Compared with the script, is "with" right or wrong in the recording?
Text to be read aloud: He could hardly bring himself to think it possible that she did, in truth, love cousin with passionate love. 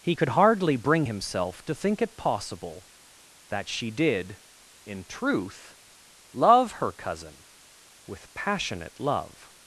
right